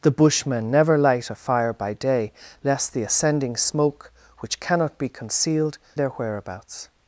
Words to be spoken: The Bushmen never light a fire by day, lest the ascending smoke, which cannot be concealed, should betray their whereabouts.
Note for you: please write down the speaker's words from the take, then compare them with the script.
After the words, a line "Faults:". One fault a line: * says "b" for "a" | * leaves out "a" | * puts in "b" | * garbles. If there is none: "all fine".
The Bushmen never light a fire by day, lest the ascending smoke, which cannot be concealed, their whereabouts.
Faults:
* leaves out "should betray"